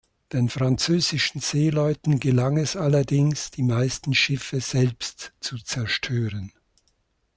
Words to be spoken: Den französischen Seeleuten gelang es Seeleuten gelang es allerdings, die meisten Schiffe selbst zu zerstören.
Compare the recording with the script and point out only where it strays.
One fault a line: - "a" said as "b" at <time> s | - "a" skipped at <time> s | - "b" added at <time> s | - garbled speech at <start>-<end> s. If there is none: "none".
- "Seeleuten gelang es" skipped at 2.8 s